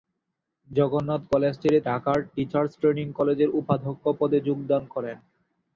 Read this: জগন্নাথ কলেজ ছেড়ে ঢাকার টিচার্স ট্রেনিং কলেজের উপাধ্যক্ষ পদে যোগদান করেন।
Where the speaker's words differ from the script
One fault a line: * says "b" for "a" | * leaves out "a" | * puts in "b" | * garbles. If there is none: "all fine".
all fine